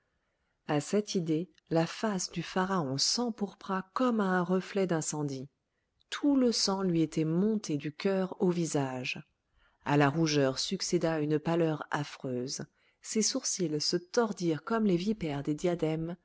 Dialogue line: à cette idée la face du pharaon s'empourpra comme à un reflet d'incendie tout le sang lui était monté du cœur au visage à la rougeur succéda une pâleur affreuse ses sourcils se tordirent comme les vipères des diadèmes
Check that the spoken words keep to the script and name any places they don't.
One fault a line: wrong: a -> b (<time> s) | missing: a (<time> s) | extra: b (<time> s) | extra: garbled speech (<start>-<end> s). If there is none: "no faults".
no faults